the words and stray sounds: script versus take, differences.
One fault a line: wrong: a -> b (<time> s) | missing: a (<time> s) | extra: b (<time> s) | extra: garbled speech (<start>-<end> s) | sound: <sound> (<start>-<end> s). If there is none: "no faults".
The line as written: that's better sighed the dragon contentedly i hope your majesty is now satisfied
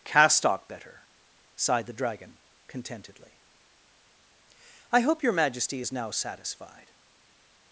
wrong: that's -> castock (0.0 s)